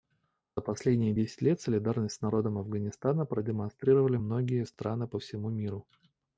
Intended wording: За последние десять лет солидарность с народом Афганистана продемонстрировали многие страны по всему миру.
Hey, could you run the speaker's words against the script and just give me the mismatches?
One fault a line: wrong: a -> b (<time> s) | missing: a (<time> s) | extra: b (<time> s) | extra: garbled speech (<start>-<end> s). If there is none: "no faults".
no faults